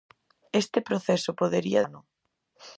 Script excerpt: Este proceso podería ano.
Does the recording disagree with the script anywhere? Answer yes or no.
no